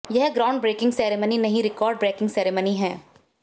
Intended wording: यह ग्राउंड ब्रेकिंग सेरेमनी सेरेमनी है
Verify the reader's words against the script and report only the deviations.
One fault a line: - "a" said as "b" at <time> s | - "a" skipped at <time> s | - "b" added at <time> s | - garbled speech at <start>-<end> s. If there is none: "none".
- "नहीं रिकॉर्ड ब्रेकिंग" added at 1.4 s